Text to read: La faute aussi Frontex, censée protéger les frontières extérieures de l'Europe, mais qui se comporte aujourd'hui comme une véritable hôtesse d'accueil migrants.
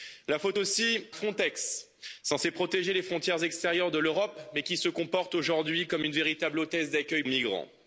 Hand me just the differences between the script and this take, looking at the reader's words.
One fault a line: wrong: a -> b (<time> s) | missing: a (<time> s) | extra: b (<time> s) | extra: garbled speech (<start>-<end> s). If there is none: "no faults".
no faults